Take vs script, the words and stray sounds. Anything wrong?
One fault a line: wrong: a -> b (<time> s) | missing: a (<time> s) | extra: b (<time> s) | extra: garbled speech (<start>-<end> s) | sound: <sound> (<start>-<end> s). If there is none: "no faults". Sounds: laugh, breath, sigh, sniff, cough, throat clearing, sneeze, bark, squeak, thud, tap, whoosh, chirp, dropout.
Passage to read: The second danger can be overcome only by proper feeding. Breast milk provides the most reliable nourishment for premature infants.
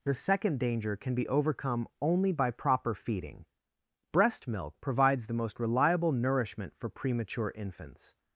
no faults